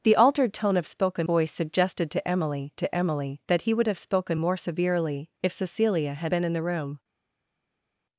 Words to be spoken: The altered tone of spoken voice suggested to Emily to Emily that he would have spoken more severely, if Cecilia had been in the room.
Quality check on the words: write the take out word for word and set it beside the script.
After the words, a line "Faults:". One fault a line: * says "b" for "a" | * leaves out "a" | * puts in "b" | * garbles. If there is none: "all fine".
The altered tone of spoken voice suggested to Emily to Emily that he would have spoken more severely, if Cecilia had been in the room.
Faults:
all fine